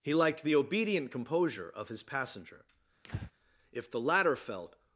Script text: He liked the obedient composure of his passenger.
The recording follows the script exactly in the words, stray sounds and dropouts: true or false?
false